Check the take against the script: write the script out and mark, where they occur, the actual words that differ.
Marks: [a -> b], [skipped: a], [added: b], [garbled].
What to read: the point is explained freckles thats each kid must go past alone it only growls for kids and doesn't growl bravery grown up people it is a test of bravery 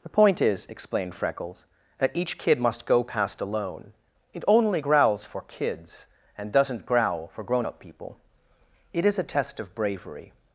the point is explained freckles [thats -> that] each kid must go past alone it only growls for kids and doesn't growl [bravery -> for] grown up people it is a test of bravery